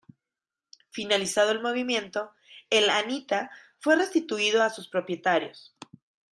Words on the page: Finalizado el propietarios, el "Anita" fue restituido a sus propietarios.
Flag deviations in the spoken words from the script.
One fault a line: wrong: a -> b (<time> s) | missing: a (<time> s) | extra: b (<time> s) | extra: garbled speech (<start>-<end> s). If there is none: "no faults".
wrong: propietarios -> movimiento (1.6 s)